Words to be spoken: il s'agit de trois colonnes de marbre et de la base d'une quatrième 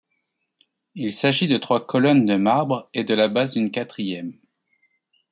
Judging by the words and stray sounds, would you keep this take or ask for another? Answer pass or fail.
pass